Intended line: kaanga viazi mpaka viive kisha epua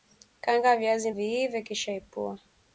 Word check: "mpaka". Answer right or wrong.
wrong